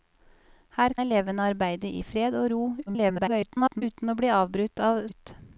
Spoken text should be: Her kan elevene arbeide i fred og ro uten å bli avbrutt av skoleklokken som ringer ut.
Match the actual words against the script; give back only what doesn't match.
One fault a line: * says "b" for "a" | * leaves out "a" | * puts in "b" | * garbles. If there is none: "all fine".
* leaves out "kan"
* garbles
* leaves out "skoleklokken som ringer"